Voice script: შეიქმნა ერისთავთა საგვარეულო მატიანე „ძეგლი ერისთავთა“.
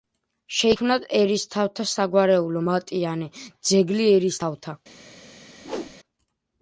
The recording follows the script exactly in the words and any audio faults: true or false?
false